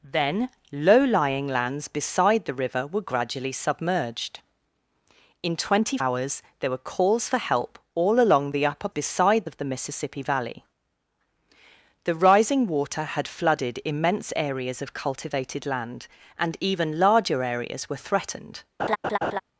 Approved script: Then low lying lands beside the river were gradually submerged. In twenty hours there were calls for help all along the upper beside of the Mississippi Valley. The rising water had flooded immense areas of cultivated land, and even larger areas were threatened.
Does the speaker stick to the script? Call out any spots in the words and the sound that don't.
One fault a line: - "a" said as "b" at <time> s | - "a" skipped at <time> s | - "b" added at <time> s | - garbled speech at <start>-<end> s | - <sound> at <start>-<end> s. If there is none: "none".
- laugh at 18.8-19.4 s